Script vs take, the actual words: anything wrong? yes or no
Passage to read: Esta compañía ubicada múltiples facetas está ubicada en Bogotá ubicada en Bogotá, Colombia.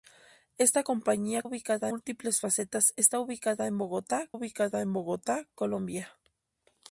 no